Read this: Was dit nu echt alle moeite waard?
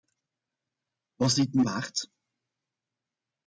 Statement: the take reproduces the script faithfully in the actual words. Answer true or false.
false